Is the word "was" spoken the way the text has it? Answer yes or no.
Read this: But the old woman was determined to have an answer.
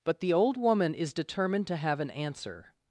no